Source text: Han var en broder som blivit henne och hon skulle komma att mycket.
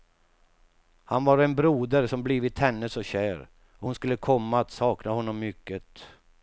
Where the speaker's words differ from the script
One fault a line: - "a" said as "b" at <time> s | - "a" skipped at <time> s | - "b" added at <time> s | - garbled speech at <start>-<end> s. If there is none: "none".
- "så kär" added at 2.9 s
- "sakna honom" added at 4.7 s